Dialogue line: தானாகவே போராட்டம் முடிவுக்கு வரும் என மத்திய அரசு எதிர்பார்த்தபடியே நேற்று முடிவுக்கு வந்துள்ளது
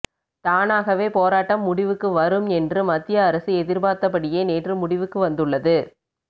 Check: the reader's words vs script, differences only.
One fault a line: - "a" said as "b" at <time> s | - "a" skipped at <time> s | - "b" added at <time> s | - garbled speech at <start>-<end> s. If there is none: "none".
- "என" said as "என்று" at 2.6 s